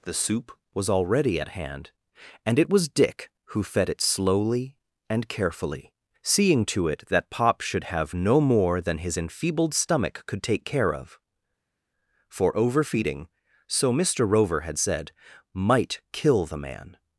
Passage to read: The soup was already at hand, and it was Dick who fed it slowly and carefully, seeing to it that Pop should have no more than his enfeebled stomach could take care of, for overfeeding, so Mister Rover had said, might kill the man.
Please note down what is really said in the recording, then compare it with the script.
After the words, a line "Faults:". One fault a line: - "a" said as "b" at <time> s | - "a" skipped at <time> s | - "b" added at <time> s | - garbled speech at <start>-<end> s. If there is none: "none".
The soup was already at hand, and it was Dick who fed it slowly and carefully, seeing to it that Pop should have no more than his enfeebled stomach could take care of, for overfeeding, so Mister Rover had said, might kill the man.
Faults:
none